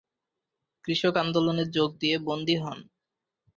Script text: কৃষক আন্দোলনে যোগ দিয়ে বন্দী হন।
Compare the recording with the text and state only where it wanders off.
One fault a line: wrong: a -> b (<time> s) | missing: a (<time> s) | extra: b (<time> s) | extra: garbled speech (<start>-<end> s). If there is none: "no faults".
no faults